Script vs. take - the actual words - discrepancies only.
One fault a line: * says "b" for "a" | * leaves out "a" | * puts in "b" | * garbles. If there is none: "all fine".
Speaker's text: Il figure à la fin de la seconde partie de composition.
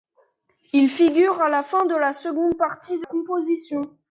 all fine